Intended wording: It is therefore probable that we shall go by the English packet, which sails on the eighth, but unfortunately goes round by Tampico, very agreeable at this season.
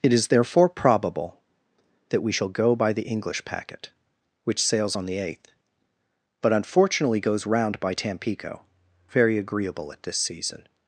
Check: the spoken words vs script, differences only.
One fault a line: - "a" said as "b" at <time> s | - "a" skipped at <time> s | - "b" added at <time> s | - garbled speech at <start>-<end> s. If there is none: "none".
none